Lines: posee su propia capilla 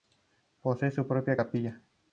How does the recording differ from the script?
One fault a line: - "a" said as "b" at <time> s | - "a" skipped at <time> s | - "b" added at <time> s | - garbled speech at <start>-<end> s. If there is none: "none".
none